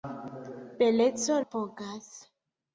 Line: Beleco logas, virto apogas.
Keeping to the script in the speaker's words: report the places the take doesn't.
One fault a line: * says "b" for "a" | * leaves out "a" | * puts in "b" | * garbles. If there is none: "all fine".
* leaves out "logas virto"